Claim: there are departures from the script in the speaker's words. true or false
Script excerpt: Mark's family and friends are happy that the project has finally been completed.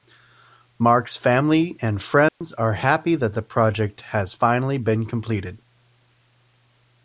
false